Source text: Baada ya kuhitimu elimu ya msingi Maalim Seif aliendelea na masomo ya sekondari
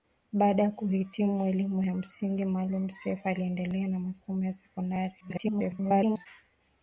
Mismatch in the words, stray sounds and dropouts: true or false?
true